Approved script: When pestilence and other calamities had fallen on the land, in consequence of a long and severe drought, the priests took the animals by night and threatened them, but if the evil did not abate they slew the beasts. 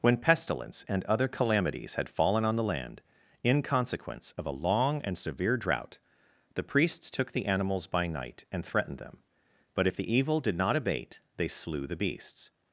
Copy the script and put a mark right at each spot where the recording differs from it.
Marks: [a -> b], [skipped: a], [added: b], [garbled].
When pestilence and other calamities had fallen on the land, in consequence of a long and severe drought, the priests took the animals by night and threatened them, but if the evil did not abate they slew the beasts.